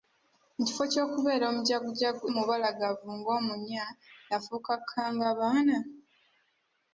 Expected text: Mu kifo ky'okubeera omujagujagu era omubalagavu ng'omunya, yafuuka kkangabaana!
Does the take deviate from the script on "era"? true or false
true